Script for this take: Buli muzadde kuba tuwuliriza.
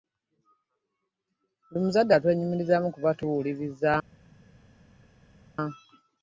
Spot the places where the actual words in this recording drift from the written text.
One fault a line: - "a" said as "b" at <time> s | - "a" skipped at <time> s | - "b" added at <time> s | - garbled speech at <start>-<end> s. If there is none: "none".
- "atwenyumirizaamu" added at 2.1 s